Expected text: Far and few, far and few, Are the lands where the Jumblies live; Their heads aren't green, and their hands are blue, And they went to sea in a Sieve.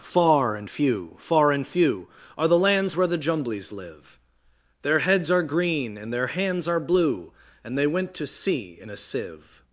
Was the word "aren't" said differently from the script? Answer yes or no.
yes